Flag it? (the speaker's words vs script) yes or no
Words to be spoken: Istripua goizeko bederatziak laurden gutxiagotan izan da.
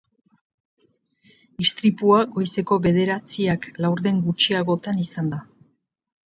no